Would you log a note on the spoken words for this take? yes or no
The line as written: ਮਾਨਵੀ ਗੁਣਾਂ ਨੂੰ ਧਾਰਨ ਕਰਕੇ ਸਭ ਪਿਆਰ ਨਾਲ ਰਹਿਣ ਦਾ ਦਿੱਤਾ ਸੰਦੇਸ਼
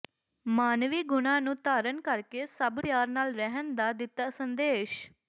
no